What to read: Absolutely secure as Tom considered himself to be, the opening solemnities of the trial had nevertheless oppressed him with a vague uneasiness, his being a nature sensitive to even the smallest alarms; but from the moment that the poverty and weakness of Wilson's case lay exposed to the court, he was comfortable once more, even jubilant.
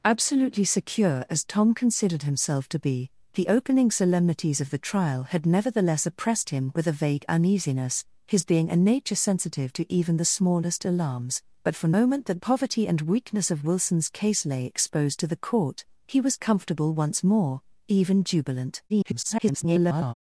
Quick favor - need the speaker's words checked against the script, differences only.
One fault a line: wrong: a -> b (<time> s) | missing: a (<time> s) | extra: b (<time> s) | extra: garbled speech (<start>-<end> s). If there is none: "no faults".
missing: the (11.9 s)
missing: the (12.4 s)
extra: garbled speech (18.9-20.1 s)